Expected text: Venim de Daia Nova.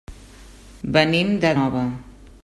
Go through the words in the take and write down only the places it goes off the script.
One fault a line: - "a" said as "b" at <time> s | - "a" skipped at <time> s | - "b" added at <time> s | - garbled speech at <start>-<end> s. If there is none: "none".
- "Daia" skipped at 1.5 s